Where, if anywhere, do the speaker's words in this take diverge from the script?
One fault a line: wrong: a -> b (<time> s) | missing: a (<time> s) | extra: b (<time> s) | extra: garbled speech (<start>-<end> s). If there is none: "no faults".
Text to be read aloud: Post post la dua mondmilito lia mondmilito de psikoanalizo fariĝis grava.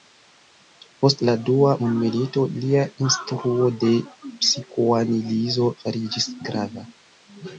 missing: post (1.2 s)
wrong: mondmilito -> instruo (3.0 s)